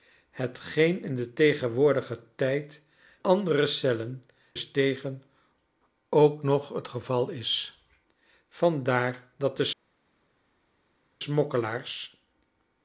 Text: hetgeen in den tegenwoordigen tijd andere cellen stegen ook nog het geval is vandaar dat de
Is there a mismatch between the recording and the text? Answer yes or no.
no